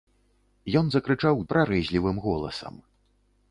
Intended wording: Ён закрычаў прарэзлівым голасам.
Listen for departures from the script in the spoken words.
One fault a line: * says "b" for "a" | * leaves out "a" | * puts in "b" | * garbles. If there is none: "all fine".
all fine